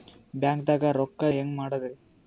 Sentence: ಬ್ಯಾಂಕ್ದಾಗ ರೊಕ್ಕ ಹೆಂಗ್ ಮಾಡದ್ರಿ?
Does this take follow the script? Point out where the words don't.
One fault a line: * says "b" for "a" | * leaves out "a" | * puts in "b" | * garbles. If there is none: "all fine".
all fine